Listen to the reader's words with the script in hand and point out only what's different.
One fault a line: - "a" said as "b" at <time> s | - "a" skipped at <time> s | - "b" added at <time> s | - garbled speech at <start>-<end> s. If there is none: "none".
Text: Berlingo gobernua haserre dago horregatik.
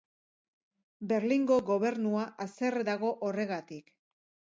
none